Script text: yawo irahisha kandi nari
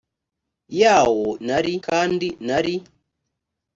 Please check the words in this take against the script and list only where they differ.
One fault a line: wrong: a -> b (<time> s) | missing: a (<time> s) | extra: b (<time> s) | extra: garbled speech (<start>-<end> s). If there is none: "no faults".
wrong: irahisha -> nari (1.5 s)